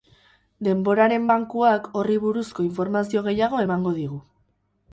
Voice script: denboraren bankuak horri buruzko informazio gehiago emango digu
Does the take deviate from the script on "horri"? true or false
false